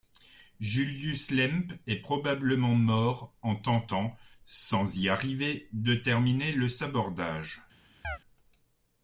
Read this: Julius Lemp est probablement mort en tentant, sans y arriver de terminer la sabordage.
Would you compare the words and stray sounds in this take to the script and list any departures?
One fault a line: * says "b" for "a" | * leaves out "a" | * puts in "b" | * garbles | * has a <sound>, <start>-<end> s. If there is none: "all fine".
* says "le" for "la"
* has a chirp, 8.0-8.2 s